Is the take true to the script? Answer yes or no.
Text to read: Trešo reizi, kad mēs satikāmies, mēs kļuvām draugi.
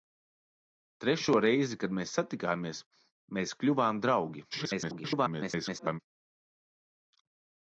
no